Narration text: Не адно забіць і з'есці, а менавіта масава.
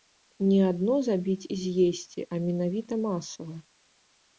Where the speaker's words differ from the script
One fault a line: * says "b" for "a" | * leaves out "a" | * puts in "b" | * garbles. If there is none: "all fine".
all fine